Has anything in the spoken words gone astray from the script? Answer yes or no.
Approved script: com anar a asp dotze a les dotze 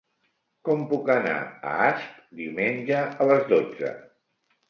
yes